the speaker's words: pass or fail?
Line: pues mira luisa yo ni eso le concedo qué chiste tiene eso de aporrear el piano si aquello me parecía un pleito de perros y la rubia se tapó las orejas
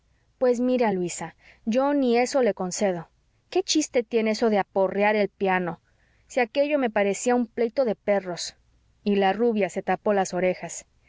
pass